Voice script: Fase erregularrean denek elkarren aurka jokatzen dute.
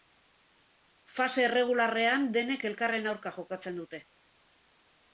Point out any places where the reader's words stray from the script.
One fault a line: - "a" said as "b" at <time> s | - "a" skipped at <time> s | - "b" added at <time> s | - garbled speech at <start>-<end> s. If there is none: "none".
none